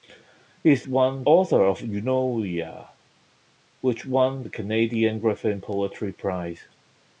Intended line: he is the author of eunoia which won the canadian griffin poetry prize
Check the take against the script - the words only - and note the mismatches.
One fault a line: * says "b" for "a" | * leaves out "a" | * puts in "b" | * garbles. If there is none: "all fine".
* says "won" for "the"